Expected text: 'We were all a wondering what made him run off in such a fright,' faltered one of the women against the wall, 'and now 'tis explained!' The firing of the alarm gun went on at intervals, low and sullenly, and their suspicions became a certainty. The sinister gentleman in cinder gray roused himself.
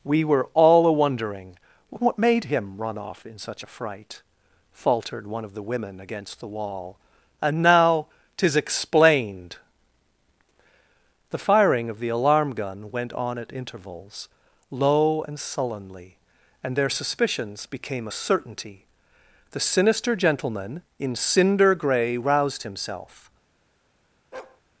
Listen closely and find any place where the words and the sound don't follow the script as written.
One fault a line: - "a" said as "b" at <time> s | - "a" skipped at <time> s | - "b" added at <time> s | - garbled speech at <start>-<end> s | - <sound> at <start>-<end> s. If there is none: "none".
- bark at 24.3-24.6 s